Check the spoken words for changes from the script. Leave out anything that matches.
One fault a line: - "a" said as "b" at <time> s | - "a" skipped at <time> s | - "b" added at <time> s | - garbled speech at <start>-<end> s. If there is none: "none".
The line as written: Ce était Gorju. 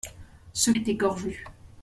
none